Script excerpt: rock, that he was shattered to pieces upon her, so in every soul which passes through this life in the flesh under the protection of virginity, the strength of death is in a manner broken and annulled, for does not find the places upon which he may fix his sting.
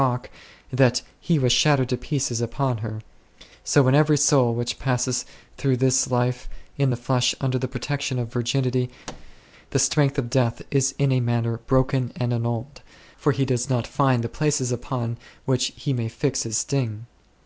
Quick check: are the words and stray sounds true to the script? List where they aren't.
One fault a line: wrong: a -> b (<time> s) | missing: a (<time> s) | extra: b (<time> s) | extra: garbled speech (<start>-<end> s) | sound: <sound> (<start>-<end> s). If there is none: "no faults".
sound: thud (9.1-9.4 s)
extra: he (13.3 s)